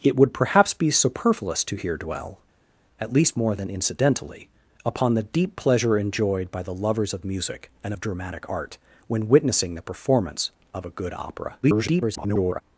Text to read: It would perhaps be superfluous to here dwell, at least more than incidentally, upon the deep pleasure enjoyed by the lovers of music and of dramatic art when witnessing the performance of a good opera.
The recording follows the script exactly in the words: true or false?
false